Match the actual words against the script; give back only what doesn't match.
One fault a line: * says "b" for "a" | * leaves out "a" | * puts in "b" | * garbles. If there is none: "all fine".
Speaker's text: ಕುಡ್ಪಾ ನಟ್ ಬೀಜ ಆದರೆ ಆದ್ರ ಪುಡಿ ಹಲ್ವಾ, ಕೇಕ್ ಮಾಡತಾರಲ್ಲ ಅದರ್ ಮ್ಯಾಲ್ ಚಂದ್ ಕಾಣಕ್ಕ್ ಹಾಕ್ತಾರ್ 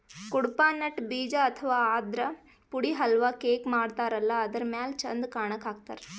* says "ಅಥವಾ" for "ಆದರೆ"